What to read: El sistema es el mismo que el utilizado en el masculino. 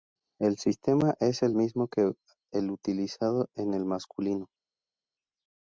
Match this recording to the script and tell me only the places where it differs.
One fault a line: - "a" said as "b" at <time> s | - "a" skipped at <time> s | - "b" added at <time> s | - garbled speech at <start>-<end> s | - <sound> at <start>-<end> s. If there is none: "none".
none